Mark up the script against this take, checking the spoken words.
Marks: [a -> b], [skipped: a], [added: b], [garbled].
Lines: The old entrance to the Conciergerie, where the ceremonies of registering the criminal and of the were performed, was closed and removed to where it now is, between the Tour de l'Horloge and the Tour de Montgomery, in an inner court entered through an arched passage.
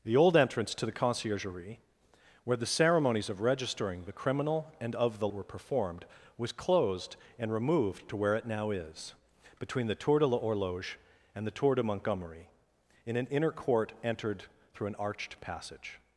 The old entrance to the Conciergerie, where the ceremonies of registering the criminal and of the were performed, was closed and removed to where it now is, between the Tour de l'Horloge and the Tour de Montgomery, in an inner court entered through an arched passage.